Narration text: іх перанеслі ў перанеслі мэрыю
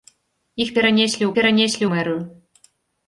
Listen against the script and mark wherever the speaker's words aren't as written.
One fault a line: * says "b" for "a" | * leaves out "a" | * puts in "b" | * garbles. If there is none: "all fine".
all fine